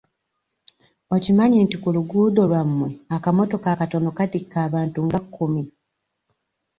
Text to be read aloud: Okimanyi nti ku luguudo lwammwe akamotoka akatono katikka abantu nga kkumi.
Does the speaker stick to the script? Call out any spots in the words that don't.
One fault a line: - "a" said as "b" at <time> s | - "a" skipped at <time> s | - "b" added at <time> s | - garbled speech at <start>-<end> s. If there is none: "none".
none